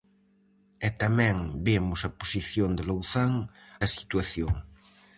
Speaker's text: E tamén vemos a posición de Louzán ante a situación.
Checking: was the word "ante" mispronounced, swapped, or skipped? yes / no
yes